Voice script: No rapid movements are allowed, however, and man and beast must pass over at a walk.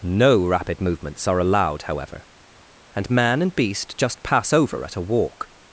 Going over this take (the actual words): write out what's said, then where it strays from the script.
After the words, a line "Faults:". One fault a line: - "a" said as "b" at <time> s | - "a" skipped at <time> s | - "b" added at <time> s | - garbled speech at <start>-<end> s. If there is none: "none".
No rapid movements are allowed, however, and man and beast just pass over at a walk.
Faults:
- "must" said as "just" at 4.0 s